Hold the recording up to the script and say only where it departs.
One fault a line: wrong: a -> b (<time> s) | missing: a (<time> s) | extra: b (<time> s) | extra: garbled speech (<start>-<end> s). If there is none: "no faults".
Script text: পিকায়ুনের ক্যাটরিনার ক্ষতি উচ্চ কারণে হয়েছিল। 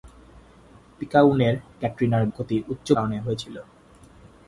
no faults